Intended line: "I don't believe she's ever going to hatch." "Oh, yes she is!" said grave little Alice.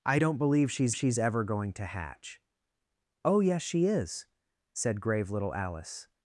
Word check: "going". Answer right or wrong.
right